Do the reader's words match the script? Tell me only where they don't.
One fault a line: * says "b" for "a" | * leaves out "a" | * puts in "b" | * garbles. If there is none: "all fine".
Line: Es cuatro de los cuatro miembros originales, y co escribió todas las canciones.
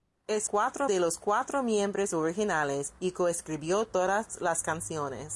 all fine